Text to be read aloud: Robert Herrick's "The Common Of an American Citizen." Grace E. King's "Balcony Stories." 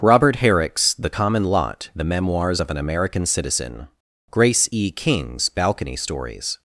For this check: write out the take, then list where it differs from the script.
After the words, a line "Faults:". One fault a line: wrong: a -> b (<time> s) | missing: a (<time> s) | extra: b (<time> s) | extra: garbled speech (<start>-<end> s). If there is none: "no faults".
Robert Herrick's "The Common Lot," "The Memoirs of an American Citizen." Grace E. King's "Balcony Stories."
Faults:
extra: Lot The Memoirs (1.4 s)